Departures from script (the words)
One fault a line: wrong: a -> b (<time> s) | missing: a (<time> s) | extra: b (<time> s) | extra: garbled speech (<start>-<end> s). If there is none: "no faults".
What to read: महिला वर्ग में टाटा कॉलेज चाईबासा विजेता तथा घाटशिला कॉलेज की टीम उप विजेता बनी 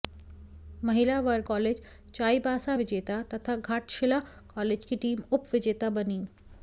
missing: में टाटा (1.5 s)